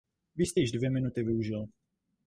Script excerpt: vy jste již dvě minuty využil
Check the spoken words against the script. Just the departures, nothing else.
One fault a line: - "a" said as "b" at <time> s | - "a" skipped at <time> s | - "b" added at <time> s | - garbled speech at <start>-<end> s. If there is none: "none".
none